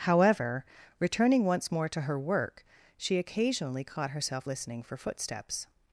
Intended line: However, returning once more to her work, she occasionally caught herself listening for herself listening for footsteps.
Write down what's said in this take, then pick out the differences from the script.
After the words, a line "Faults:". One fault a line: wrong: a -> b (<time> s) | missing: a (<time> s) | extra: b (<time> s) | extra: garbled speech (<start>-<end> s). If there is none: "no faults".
However, returning once more to her work, she occasionally caught herself listening for footsteps.
Faults:
missing: herself listening for (4.9 s)